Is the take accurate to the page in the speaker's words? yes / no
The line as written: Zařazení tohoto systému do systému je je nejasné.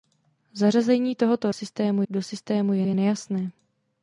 yes